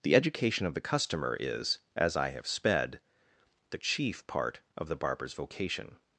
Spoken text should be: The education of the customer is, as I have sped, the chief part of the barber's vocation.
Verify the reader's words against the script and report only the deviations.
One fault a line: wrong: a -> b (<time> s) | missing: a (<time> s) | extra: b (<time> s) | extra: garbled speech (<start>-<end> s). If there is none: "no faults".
no faults